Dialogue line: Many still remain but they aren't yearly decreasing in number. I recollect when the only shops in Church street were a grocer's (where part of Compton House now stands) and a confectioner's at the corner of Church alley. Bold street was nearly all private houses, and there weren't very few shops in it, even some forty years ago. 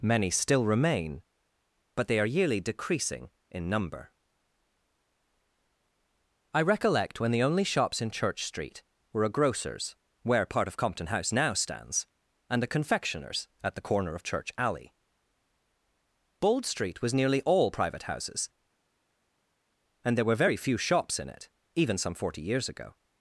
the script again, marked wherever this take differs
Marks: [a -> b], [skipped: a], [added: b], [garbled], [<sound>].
Many still remain but they [aren't -> are] yearly decreasing in number. I recollect when the only shops in Church street were a grocer's (where part of Compton House now stands) and a confectioner's at the corner of Church alley. Bold street was nearly all private houses, and there [weren't -> were] very few shops in it, even some forty years ago.